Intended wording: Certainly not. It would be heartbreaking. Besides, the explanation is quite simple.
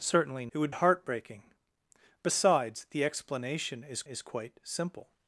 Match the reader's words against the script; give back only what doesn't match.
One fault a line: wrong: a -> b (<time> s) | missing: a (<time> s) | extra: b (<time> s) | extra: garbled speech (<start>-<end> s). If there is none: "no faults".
missing: not (0.5 s)
missing: be (0.7 s)
extra: is (4.0 s)